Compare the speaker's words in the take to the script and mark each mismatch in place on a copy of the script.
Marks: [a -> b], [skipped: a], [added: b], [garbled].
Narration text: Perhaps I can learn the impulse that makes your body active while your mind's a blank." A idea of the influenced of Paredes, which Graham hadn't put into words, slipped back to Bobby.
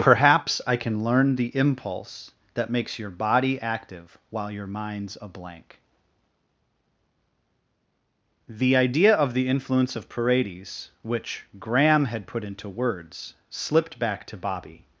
Perhaps I can learn the impulse that makes your body active while your mind's a blank." [A -> The] idea of the [influenced -> influence] of Paredes, which Graham [hadn't -> had] put into words, slipped back to Bobby.